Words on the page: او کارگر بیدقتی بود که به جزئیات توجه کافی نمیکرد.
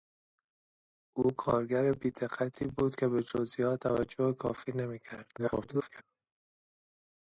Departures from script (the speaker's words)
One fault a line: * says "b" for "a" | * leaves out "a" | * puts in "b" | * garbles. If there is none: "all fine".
* garbles